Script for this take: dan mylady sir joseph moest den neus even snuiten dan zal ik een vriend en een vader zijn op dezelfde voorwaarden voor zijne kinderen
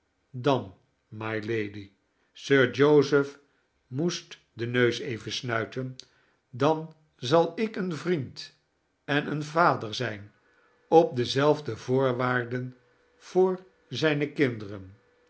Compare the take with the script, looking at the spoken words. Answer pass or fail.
pass